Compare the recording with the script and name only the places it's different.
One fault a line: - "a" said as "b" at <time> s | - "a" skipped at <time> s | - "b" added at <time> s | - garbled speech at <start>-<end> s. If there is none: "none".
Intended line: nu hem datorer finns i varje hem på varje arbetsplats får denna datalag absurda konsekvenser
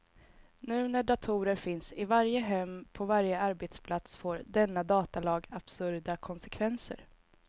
- "hem" said as "när" at 0.9 s